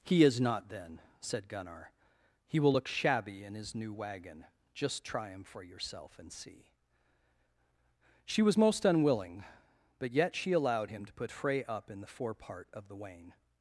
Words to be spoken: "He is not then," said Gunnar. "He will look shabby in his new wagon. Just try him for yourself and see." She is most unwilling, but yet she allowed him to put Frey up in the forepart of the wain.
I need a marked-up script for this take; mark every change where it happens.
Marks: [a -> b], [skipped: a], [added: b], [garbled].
"He is not then," said Gunnar. "He will look shabby in his new wagon. Just try him for yourself and see." She [is -> was] most unwilling, but yet she allowed him to put Frey up in the forepart of the wain.